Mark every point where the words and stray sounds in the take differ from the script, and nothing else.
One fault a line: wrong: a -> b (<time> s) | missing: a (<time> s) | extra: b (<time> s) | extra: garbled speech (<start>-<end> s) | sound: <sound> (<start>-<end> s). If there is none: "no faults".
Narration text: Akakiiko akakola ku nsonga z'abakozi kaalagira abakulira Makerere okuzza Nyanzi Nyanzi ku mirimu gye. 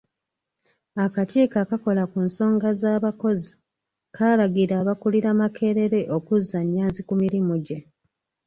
missing: Nyanzi (7.0 s)